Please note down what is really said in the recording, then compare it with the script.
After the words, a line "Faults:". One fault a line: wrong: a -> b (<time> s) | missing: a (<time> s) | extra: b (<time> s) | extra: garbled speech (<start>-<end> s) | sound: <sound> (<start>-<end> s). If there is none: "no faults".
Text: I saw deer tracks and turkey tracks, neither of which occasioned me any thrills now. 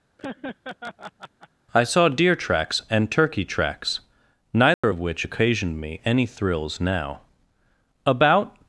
I saw deer tracks and turkey tracks, neither of which occasioned me any thrills now. About
Faults:
sound: laugh (0.2-1.5 s)
sound: dropout (4.7-4.8 s)
extra: About (8.0 s)